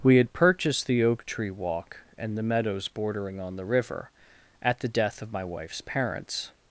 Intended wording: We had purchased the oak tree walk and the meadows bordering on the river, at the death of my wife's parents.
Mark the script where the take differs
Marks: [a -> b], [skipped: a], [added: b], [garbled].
We had purchased the oak tree walk and the meadows bordering on the river, at the death of my wife's parents.